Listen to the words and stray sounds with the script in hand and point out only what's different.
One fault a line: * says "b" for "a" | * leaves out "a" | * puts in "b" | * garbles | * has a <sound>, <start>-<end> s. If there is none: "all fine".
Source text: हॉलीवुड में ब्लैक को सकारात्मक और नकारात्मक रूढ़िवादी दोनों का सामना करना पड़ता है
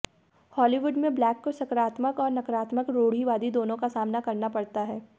all fine